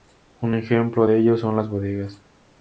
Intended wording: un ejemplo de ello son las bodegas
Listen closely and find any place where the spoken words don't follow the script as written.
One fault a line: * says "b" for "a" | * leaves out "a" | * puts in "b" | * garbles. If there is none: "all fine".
all fine